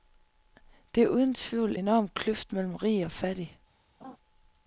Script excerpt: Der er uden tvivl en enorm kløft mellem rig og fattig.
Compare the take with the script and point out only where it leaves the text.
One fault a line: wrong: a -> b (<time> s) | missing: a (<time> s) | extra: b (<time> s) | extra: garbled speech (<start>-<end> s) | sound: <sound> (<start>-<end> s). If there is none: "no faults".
missing: en (1.8 s)
sound: laugh (4.0-4.2 s)